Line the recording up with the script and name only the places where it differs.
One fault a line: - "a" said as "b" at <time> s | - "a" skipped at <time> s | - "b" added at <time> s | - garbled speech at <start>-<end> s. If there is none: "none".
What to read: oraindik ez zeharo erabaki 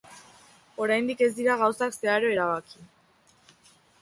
- "dira gauzak" added at 1.4 s